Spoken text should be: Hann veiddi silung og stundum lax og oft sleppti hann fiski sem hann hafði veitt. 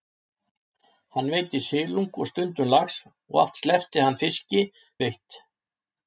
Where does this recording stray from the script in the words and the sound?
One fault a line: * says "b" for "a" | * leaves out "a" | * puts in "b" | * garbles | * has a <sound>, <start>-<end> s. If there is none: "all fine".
* leaves out "sem hann hafði"